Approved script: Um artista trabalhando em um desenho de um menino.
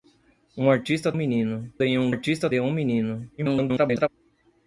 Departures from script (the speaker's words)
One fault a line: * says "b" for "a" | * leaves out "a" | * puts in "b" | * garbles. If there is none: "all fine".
* says "menino" for "trabalhando"
* says "artista" for "desenho"
* garbles